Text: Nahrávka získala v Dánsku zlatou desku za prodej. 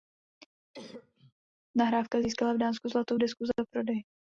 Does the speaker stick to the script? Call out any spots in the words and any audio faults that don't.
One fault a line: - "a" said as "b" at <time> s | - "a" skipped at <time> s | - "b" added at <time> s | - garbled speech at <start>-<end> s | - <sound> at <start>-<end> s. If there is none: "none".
- cough at 0.7-1.3 s